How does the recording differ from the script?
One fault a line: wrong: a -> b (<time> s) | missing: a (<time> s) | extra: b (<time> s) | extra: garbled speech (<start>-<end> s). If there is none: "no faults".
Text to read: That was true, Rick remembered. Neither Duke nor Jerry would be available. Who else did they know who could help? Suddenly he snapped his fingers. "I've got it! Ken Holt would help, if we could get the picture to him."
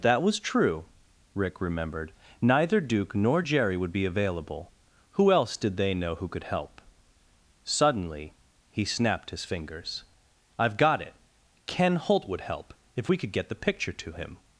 no faults